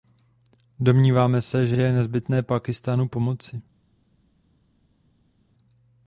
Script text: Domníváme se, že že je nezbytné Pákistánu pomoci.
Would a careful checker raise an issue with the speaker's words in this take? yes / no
no